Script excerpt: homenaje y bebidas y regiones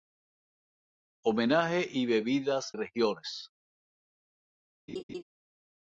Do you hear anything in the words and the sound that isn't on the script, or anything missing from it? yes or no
yes